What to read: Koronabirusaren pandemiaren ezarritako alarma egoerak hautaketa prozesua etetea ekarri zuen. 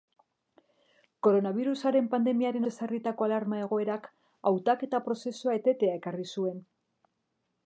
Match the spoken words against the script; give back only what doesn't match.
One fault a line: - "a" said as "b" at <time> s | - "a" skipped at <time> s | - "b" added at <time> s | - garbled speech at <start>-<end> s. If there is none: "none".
none